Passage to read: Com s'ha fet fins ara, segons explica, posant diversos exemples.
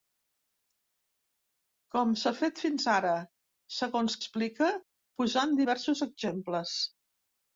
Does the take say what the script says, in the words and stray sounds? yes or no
yes